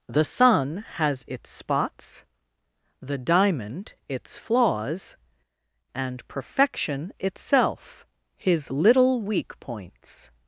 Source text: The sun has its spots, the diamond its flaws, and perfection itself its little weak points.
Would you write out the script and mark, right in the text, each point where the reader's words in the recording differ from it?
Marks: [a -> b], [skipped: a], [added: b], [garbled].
The sun has its spots, the diamond its flaws, and perfection itself [its -> his] little weak points.